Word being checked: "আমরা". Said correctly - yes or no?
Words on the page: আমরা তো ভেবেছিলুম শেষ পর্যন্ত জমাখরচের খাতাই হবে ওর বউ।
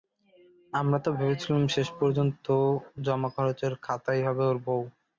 yes